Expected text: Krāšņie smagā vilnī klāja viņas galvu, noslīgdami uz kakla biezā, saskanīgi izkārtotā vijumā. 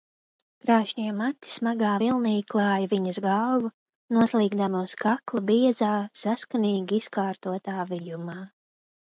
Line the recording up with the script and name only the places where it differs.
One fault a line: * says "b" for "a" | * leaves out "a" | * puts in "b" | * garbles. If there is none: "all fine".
* puts in "mati"